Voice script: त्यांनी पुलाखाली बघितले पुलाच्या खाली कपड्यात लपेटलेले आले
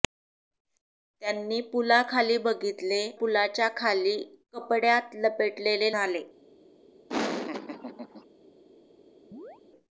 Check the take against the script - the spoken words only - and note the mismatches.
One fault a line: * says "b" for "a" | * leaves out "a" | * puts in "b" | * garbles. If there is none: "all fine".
all fine